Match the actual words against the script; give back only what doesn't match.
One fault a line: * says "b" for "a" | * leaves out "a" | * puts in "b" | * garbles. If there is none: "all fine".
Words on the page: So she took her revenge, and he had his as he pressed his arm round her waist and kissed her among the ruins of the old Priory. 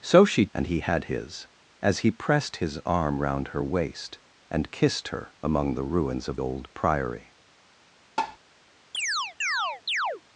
* leaves out "took her revenge"
* leaves out "the"